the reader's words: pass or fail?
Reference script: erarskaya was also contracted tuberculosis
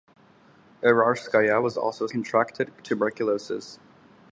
pass